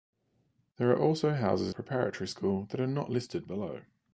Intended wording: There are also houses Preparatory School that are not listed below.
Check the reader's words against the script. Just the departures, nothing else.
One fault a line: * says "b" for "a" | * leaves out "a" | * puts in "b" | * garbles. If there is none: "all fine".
all fine